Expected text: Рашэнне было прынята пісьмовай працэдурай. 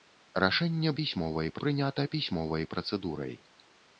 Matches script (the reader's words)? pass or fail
fail